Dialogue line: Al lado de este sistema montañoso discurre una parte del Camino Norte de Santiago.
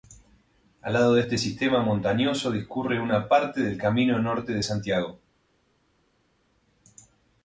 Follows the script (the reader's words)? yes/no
yes